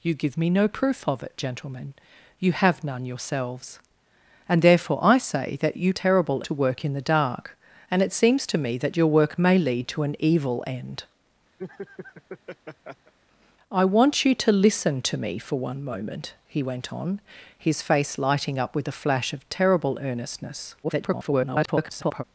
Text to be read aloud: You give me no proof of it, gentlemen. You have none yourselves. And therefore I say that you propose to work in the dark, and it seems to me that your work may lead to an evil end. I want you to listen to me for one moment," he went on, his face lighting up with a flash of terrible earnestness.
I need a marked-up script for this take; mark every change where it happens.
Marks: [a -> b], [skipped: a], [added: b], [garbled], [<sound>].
You give me no proof of it, gentlemen. You have none yourselves. And therefore I say that you [propose -> terrible] to work in the dark, and it seems to me that your work may lead to an evil end. [laugh] I want you to listen to me for one moment," he went on, his face lighting up with a flash of terrible earnestness. [garbled]